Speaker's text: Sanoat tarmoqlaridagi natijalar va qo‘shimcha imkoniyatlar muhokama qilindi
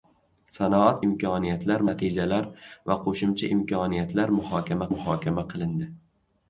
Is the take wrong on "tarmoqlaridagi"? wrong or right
wrong